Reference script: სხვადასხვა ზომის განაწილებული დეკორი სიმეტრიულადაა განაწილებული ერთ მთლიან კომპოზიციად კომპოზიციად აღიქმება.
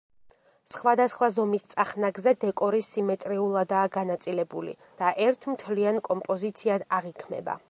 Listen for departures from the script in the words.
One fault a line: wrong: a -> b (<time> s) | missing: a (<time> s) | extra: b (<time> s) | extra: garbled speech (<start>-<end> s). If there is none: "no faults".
wrong: განაწილებული -> წახნაგზე (1.7 s)
extra: და (5.0 s)
missing: კომპოზიციად (6.9 s)